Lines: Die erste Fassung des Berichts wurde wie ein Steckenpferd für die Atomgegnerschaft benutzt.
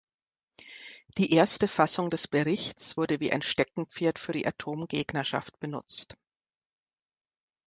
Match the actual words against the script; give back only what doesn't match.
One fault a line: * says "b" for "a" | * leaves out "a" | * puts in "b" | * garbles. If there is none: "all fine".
all fine